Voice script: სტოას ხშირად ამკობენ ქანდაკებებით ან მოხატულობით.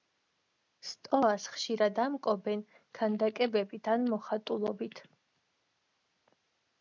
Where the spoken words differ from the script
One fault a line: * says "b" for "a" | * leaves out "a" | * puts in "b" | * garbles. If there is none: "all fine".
all fine